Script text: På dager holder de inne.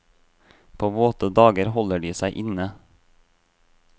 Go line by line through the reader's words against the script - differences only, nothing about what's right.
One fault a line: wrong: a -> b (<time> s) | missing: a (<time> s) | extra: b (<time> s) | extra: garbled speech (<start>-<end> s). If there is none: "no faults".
extra: våte (0.9 s)
extra: seg (2.2 s)